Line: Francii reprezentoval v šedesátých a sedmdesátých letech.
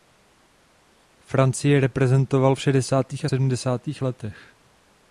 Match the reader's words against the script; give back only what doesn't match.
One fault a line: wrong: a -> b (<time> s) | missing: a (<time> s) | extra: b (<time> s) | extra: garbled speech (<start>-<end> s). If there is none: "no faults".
no faults